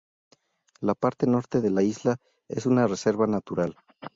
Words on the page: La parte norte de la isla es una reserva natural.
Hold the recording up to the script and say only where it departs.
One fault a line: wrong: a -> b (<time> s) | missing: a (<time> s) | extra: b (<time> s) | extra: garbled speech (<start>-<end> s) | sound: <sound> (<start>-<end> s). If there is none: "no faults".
no faults